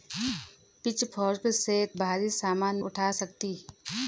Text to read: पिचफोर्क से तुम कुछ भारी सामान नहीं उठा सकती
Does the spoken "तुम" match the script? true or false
false